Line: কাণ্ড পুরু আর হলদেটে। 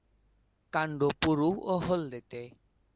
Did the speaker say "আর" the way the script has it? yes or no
no